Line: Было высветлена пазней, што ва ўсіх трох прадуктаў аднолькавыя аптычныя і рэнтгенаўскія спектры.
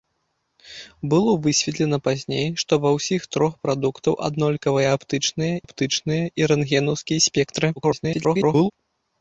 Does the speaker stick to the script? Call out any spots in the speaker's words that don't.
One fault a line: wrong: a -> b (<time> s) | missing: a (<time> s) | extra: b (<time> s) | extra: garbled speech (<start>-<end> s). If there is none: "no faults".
extra: аптычныя (5.6 s)
extra: garbled speech (7.8-8.7 s)